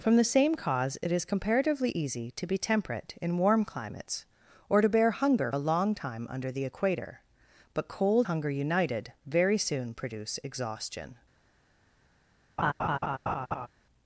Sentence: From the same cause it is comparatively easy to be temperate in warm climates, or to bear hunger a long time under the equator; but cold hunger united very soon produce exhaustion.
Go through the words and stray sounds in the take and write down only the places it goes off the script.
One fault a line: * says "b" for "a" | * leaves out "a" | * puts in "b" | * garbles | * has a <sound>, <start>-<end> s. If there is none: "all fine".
* has a laugh, 12.6-13.7 s